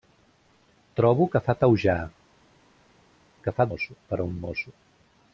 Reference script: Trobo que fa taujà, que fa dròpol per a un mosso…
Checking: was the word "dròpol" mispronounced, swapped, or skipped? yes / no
yes